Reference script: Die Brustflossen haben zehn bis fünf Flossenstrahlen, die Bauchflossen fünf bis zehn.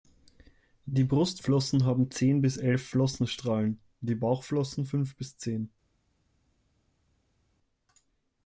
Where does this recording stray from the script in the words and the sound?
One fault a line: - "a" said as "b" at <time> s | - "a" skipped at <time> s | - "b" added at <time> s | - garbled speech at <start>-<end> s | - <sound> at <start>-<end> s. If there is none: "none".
- "fünf" said as "elf" at 2.6 s